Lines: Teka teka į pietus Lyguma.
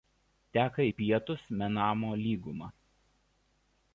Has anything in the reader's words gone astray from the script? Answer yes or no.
yes